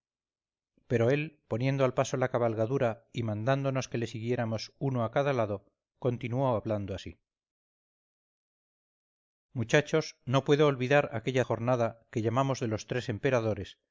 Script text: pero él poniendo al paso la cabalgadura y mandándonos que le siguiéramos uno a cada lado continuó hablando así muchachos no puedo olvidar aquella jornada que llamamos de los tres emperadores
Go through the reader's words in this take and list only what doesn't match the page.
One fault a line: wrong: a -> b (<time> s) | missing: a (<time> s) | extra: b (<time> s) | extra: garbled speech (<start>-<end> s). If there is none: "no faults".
no faults